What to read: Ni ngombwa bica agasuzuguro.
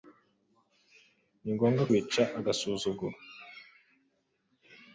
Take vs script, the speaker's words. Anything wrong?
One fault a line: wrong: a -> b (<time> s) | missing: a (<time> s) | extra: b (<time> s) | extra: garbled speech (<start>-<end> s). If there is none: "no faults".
no faults